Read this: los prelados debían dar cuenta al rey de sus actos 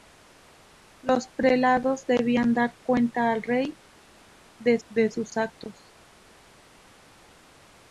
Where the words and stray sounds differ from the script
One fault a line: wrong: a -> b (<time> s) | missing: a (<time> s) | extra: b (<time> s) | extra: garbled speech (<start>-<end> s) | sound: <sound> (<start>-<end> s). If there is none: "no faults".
extra: de (4.9 s)